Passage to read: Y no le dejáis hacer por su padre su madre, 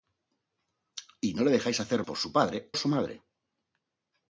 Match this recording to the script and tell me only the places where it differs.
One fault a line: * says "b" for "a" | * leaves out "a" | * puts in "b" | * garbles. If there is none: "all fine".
all fine